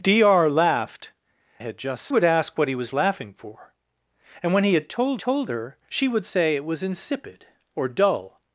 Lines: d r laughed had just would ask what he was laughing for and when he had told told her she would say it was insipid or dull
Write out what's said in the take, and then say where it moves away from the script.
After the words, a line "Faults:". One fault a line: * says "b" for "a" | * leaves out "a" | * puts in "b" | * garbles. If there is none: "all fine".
d r laughed had just would ask what he was laughing for and when he had told told her she would say it was insipid or dull
Faults:
all fine